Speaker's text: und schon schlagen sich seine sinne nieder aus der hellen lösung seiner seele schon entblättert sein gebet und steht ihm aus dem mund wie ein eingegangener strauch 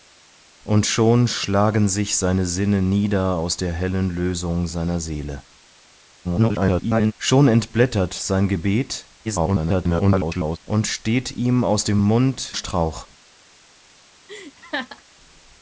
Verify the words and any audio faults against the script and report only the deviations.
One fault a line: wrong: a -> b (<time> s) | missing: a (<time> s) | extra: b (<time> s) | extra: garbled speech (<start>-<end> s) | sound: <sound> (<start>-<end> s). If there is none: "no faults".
extra: garbled speech (6.2-7.1 s)
extra: garbled speech (9.2-10.6 s)
missing: wie ein eingegangener (12.6 s)
sound: laugh (14.3-15.0 s)